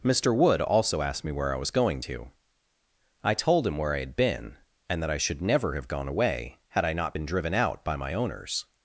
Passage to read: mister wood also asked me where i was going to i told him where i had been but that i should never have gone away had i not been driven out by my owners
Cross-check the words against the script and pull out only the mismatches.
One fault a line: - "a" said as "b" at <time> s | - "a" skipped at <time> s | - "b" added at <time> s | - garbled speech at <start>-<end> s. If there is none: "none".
- "but" said as "and" at 4.9 s